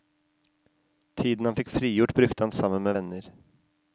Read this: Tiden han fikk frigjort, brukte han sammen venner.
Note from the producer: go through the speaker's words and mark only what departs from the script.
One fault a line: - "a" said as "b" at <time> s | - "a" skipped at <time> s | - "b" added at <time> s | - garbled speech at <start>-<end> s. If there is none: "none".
- "med" added at 2.8 s